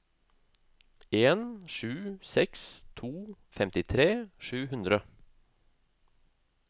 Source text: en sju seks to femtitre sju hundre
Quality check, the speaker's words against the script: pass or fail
pass